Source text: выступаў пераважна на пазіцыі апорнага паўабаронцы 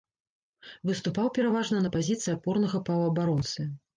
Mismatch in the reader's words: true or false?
false